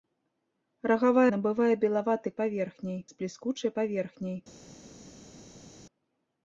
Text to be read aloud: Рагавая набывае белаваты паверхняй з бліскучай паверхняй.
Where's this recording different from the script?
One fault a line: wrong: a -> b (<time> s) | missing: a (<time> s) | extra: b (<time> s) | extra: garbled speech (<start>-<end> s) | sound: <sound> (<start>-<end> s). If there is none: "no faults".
no faults